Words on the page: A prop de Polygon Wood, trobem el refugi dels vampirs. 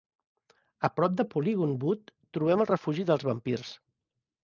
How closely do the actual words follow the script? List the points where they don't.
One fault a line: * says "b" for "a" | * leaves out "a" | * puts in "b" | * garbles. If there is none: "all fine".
all fine